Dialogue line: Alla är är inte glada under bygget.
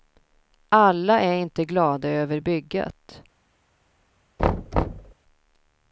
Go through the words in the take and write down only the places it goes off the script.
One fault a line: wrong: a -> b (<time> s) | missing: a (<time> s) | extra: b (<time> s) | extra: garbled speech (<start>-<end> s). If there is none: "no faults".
missing: är (1.3 s)
wrong: under -> över (2.1 s)